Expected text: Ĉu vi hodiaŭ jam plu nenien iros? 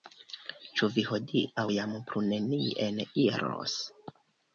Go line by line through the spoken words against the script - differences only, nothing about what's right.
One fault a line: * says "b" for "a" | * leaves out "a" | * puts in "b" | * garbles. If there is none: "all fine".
all fine